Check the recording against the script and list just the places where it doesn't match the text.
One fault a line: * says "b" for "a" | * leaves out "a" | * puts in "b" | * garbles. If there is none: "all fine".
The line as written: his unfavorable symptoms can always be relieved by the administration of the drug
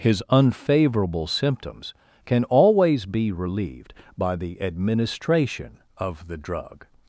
all fine